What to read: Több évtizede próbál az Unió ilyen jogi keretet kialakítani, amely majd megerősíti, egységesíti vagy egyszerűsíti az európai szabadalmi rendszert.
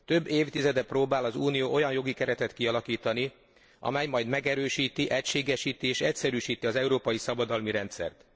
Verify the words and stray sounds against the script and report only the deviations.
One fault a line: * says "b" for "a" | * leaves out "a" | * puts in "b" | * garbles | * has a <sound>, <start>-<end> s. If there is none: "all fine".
* says "olyan" for "ilyen"
* says "és" for "vagy"